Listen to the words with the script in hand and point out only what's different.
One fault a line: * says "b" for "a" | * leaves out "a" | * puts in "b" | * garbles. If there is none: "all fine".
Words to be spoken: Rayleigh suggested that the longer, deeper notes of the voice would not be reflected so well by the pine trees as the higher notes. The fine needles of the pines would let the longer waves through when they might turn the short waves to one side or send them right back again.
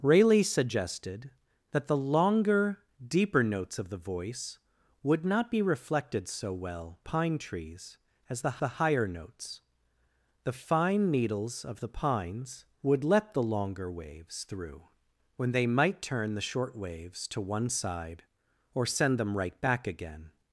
* leaves out "by the"
* puts in "the"